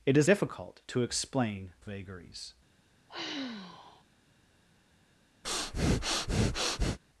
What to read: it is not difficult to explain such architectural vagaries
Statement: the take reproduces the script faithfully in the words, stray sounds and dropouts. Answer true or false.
false